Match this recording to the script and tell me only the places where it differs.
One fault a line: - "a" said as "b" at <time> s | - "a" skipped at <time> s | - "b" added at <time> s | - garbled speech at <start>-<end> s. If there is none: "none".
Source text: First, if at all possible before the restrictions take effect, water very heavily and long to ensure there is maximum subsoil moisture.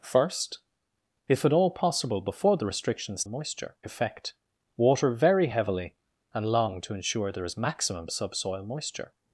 - "take" said as "moisture" at 3.3 s